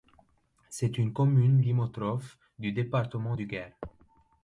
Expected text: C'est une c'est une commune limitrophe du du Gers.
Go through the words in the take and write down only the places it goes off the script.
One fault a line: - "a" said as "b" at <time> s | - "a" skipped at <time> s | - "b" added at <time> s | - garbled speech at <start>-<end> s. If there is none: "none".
- "c'est une" skipped at 1.1 s
- "département" added at 2.7 s